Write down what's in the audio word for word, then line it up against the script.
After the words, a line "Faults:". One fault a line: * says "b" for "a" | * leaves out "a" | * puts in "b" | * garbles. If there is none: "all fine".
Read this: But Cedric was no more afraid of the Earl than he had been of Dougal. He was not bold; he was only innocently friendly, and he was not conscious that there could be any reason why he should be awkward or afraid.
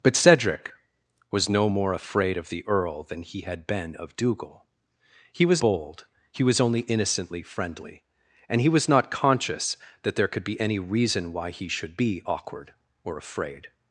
But Cedric was no more afraid of the Earl than he had been of Dougal. He was bold; he was only innocently friendly, and he was not conscious that there could be any reason why he should be awkward or afraid.
Faults:
* leaves out "not"